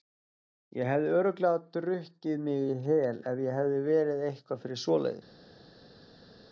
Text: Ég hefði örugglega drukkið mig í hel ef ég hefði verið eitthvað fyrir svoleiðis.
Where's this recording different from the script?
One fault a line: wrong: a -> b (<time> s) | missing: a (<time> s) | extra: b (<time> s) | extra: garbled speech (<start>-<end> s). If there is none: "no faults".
no faults